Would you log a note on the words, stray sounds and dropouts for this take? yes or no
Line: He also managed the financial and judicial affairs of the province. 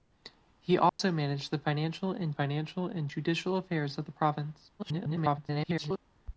yes